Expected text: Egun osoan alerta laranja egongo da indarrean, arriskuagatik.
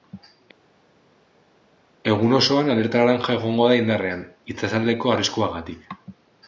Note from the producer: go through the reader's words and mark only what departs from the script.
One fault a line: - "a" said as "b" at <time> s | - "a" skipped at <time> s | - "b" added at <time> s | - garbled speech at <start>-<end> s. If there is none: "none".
- "itsasaldeko" added at 4.5 s